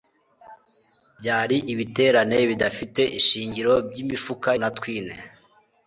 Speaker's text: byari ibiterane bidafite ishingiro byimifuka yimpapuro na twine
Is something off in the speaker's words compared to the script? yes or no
yes